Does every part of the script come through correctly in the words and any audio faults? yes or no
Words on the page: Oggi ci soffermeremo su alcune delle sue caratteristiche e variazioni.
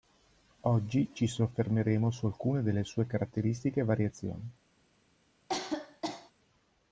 no